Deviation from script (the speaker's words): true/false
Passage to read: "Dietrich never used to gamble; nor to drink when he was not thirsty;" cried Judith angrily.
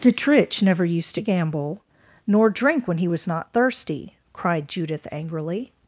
true